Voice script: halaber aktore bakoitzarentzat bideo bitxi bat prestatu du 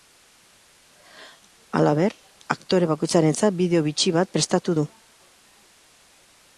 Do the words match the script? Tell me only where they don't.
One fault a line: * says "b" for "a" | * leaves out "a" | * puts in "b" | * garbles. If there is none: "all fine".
all fine